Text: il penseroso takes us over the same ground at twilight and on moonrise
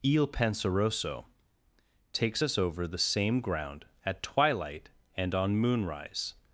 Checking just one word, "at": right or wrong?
right